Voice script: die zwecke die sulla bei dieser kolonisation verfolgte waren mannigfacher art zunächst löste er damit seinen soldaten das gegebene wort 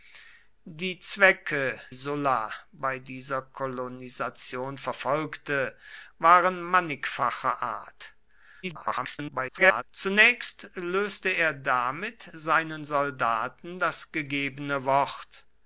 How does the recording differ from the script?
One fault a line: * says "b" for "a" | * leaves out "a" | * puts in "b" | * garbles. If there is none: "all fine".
* leaves out "die"
* garbles